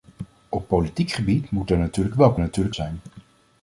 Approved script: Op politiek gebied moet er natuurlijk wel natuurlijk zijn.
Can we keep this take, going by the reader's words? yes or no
yes